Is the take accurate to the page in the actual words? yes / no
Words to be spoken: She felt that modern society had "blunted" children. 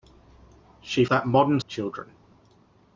no